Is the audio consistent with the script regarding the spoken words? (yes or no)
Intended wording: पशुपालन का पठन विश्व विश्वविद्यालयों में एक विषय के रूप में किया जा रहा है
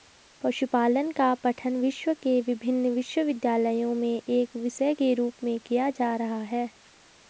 no